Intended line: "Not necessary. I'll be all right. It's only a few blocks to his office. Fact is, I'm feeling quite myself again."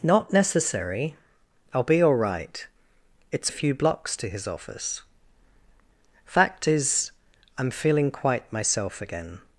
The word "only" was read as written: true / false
false